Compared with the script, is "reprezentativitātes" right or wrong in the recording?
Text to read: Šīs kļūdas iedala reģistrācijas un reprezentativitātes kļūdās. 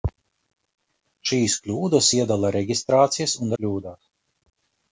wrong